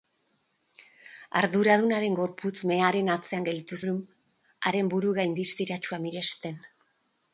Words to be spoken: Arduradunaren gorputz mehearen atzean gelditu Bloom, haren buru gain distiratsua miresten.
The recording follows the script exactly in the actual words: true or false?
true